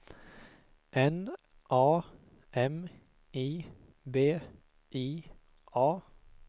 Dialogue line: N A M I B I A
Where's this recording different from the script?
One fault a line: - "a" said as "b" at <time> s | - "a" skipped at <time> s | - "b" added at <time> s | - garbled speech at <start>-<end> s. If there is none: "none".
none